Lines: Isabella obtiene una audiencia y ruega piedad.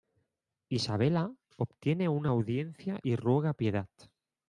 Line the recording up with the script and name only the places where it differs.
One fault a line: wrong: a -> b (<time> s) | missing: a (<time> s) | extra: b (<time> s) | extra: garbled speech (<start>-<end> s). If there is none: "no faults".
no faults